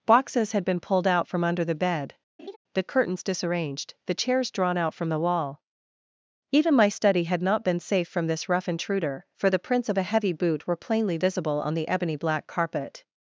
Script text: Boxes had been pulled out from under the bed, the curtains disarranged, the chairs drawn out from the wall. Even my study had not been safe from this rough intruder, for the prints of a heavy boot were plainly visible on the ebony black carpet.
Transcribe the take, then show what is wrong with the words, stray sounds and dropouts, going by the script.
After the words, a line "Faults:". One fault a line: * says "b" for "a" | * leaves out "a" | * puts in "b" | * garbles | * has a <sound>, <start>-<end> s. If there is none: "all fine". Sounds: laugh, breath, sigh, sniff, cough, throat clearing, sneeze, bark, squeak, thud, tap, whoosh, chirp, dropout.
Boxes had been pulled out from under the bed, the curtains disarranged, the chairs drawn out from the wall. Even my study had not been safe from this rough intruder, for the prints of a heavy boot were plainly visible on the ebony black carpet.
Faults:
* has a laugh, 2.4-2.6 s